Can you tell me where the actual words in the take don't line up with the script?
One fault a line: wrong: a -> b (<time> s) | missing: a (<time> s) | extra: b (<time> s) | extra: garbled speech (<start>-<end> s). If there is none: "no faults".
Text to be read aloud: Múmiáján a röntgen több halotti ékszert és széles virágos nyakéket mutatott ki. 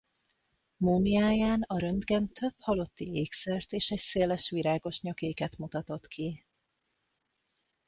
extra: egy (3.9 s)